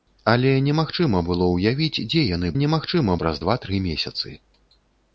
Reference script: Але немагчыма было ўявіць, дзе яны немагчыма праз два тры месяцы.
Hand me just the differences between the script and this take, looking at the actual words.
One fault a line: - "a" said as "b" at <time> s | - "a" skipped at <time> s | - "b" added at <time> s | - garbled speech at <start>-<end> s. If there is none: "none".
none